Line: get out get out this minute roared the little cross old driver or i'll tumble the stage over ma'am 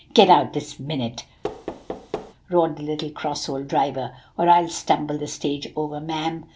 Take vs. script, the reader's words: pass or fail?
fail